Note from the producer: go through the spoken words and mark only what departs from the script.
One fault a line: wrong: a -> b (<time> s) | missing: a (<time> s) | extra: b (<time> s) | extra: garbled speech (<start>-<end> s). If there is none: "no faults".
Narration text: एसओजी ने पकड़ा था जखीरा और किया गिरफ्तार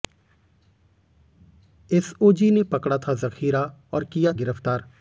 no faults